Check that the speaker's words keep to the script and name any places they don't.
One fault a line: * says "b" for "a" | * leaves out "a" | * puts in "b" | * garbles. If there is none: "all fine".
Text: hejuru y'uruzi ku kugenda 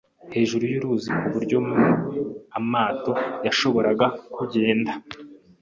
* puts in "buryo amato yashoboraga"